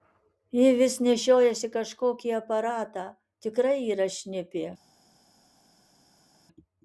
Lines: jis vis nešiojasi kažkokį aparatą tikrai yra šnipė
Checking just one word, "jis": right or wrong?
wrong